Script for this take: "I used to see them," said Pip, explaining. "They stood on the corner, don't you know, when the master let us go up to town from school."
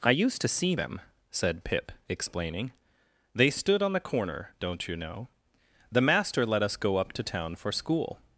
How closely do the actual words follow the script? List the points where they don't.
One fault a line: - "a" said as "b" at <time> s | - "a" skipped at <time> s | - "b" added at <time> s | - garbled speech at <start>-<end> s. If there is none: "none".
- "when" skipped at 5.3 s
- "from" said as "for" at 7.6 s